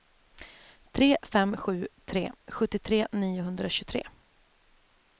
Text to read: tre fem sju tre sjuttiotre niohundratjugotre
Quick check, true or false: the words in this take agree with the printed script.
true